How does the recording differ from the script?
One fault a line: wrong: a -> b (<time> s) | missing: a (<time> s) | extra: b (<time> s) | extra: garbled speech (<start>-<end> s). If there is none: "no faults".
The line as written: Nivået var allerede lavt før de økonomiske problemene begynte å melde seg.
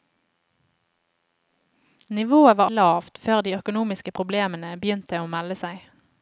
missing: allerede (2.7 s)